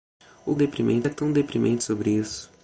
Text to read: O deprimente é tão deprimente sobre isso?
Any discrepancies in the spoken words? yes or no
no